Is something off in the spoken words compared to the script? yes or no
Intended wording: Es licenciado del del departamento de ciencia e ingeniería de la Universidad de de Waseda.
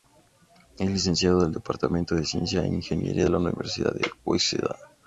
yes